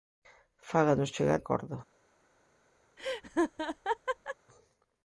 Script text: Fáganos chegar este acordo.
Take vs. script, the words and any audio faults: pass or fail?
fail